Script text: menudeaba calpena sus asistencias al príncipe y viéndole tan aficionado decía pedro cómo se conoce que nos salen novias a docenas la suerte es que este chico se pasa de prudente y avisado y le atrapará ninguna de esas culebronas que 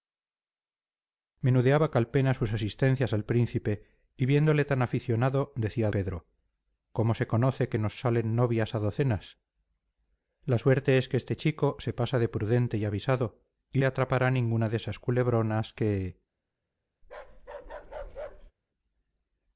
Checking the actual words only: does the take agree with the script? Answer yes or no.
yes